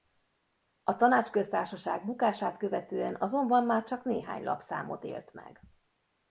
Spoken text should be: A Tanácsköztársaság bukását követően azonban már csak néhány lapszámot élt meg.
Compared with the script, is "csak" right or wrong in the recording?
right